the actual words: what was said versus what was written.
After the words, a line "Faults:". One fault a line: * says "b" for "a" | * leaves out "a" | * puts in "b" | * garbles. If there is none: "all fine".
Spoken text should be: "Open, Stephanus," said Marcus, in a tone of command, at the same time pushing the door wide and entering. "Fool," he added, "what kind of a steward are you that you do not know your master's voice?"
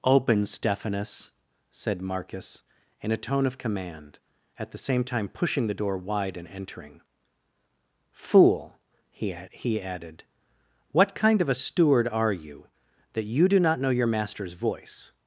"Open, Stephanus," said Marcus, in a tone of command, at the same time pushing the door wide and entering. "Fool," he he added, "what kind of a steward are you that you do not know your master's voice?"
Faults:
* puts in "he"